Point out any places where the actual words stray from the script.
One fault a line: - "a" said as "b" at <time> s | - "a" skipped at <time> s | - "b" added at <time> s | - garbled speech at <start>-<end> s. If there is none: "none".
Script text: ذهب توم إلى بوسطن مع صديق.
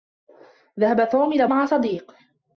- "بوسطن" skipped at 1.5 s